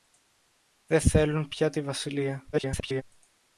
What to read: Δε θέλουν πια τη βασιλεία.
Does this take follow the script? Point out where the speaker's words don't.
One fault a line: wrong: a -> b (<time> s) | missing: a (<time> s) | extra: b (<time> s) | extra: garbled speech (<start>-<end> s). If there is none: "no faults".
extra: garbled speech (2.5-3.0 s)